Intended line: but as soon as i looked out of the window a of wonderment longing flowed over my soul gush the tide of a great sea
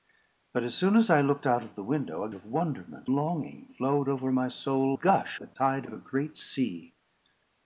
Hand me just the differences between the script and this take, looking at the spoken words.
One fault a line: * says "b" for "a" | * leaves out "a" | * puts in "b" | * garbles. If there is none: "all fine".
all fine